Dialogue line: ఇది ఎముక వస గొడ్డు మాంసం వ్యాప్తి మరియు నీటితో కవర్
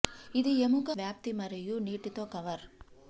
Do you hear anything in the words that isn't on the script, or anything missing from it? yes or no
yes